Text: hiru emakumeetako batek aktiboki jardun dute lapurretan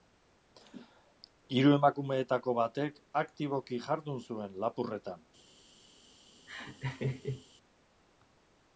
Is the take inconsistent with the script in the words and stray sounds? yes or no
yes